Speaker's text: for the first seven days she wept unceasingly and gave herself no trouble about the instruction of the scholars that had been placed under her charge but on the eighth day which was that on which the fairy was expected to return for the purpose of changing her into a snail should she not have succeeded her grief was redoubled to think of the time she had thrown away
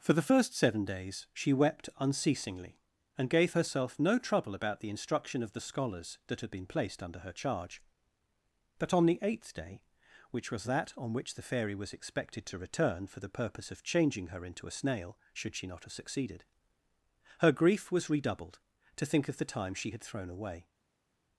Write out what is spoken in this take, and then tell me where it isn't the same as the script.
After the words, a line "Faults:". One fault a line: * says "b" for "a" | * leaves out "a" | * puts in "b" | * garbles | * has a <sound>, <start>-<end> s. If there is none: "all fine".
for the first seven days she wept unceasingly and gave herself no trouble about the instruction of the scholars that had been placed under her charge but on the eighth day which was that on which the fairy was expected to return for the purpose of changing her into a snail should she not have succeeded her grief was redoubled to think of the time she had thrown away
Faults:
all fine